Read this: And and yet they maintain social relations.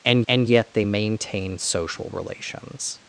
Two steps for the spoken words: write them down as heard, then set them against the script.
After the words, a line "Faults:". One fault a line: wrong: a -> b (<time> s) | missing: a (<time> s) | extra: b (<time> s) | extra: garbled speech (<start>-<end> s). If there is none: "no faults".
And and yet they maintain social relations.
Faults:
no faults